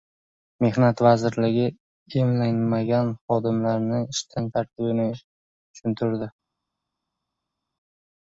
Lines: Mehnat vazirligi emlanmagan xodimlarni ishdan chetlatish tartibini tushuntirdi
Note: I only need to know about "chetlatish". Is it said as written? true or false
false